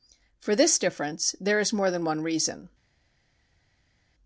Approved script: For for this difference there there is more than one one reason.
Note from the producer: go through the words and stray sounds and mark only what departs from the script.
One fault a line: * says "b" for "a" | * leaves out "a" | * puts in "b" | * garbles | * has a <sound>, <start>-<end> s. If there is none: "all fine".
* leaves out "for"
* leaves out "there"
* leaves out "one"